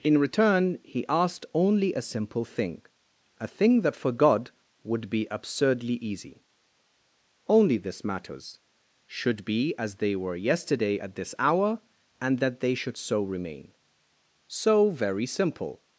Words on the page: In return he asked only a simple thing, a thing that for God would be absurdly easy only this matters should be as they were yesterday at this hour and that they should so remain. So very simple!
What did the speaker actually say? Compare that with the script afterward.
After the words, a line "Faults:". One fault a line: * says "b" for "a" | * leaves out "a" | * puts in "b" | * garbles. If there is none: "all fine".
In return he asked only a simple thing, a thing that for God would be absurdly easy only this matters should be as they were yesterday at this hour and that they should so remain. So very simple!
Faults:
all fine